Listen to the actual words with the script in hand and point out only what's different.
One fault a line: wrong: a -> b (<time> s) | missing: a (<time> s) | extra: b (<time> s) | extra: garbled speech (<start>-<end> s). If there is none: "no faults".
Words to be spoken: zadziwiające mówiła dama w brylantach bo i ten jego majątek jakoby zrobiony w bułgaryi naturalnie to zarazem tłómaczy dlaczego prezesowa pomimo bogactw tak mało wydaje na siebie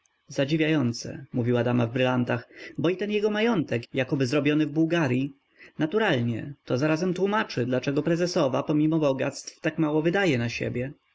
no faults